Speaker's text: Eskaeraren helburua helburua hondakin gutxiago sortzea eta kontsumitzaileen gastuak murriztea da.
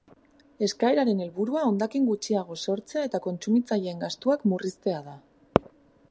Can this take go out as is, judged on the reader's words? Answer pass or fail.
fail